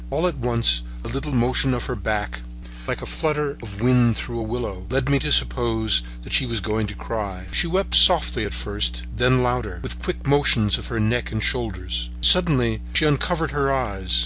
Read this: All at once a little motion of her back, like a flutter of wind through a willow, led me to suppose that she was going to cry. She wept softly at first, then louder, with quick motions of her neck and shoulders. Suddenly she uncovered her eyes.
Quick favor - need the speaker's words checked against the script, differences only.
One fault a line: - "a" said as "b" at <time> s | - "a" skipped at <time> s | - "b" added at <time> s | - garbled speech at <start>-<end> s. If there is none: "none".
none